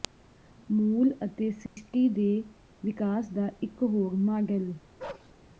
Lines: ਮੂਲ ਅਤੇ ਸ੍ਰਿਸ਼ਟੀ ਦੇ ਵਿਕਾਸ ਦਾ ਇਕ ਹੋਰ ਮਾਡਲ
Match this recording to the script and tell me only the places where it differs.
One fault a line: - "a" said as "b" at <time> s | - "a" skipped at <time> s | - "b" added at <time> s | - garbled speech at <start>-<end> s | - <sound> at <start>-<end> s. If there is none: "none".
- dropout at 1.7-1.8 s
- bark at 5.0-5.3 s